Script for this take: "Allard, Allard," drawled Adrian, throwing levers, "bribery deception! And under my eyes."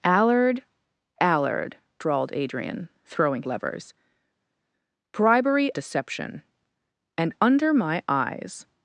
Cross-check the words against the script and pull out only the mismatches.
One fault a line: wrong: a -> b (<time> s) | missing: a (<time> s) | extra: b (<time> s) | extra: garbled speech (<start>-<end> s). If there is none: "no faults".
no faults